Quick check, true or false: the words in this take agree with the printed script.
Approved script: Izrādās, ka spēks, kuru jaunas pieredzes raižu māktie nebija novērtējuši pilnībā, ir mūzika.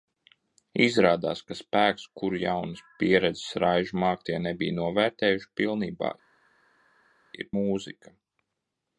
true